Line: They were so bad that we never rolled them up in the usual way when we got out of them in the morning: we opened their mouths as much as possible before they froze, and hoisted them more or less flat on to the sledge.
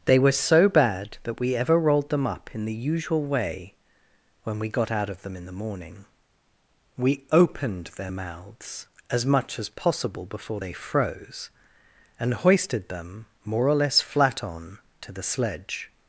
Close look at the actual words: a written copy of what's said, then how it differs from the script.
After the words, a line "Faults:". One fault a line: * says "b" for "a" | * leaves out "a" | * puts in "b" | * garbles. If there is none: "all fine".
They were so bad that we ever rolled them up in the usual way when we got out of them in the morning: we opened their mouths as much as possible before they froze, and hoisted them more or less flat on to the sledge.
Faults:
* says "ever" for "never"